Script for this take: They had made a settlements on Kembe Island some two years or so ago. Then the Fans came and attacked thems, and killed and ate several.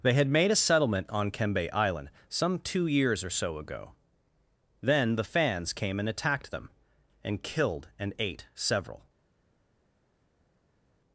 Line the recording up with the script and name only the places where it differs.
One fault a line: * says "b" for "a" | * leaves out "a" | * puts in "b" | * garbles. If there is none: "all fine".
* says "settlement" for "settlements"
* says "them" for "thems"